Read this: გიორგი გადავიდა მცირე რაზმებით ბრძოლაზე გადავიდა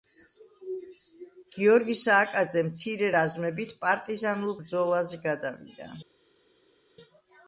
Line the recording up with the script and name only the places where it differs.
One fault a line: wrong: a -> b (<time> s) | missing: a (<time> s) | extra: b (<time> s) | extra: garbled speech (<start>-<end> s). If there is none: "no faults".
wrong: გადავიდა -> სააკაძე (2.0 s)
extra: პარტიზანულ (3.8 s)